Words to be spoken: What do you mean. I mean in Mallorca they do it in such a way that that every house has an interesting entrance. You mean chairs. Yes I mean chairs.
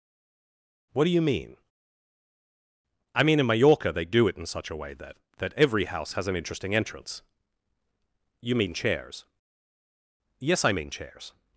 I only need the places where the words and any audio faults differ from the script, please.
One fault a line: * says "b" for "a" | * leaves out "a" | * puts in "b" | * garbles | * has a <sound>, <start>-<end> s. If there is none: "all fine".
all fine